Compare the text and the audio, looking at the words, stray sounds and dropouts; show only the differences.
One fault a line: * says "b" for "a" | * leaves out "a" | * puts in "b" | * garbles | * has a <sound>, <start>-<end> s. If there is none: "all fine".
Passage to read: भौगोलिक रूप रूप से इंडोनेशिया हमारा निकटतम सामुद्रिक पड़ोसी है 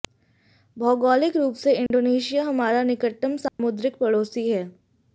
* leaves out "रूप"
* has a dropout, 1.9-1.9 s
* has a dropout, 3.5-3.6 s